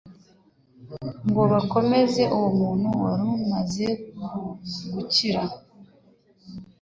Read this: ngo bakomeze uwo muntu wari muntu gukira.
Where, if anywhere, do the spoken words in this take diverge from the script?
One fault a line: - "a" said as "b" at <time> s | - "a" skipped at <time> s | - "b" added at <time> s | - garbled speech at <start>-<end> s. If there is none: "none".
- "muntu" said as "umaze" at 3.4 s